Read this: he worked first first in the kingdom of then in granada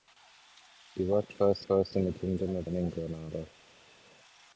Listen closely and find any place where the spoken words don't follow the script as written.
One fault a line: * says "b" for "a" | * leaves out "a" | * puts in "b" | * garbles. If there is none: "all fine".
all fine